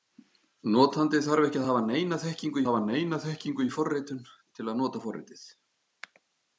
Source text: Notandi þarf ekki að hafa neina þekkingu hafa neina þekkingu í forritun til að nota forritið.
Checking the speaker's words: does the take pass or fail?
pass